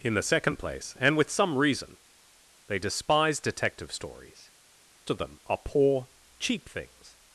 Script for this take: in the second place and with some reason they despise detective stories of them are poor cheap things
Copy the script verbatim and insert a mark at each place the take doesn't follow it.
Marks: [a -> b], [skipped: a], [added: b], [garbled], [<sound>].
in the second place and with some reason they despise detective stories of them are poor cheap things